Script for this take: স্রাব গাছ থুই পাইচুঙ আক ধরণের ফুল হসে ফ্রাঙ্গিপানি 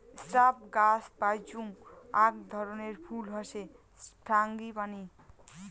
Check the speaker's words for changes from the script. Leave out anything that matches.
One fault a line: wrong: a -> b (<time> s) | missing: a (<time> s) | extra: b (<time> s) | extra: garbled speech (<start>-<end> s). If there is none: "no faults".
missing: থুই (1.0 s)